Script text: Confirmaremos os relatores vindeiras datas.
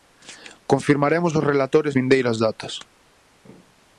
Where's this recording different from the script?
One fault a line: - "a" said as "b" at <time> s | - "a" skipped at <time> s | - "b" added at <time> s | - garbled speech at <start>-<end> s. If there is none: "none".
none